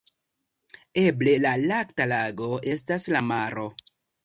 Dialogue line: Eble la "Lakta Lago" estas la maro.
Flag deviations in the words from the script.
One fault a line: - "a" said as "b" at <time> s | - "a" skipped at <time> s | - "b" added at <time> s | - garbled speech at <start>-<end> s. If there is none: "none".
none